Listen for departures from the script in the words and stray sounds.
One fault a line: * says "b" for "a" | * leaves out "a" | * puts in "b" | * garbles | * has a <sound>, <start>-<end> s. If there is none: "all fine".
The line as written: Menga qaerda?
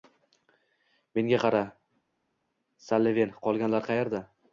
* puts in "qara Salliven qolganlar"